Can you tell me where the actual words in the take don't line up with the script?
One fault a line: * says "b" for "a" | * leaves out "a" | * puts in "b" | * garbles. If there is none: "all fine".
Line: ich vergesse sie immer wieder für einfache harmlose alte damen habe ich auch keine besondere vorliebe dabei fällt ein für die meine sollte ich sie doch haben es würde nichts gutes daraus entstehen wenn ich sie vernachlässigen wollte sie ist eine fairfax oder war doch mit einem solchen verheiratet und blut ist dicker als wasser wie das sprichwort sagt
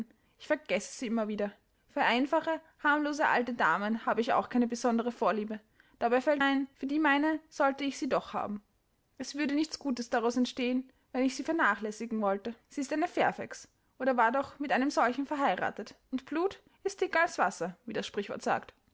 all fine